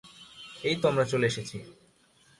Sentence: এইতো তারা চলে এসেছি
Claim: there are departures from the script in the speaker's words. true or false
true